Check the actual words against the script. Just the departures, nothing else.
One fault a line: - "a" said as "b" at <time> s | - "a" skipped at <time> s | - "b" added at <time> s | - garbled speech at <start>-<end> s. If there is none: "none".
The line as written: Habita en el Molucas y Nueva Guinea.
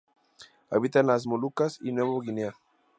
- "el" said as "las" at 1.1 s